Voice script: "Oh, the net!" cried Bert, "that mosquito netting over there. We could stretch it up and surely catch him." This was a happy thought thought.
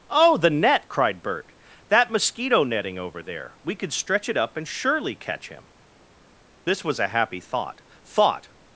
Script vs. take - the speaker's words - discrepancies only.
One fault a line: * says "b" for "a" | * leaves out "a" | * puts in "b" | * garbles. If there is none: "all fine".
all fine